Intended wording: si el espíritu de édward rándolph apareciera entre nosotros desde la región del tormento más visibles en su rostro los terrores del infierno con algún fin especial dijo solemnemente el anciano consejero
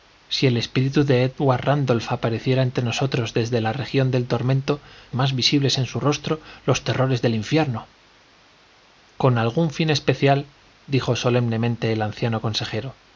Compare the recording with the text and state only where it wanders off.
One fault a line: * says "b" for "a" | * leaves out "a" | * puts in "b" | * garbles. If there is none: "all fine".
all fine